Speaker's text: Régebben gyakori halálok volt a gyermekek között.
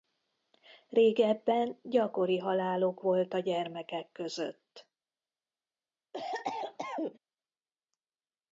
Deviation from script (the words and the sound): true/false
true